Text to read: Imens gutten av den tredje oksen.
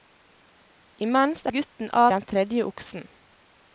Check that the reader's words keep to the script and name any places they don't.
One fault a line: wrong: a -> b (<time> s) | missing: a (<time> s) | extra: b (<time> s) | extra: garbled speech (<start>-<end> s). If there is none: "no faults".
no faults